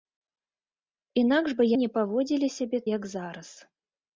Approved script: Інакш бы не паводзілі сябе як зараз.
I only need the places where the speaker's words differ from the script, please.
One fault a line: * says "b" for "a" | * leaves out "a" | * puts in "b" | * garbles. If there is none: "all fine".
all fine